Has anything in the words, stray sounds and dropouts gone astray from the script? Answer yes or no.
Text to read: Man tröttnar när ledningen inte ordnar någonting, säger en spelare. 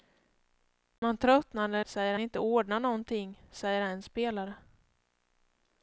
yes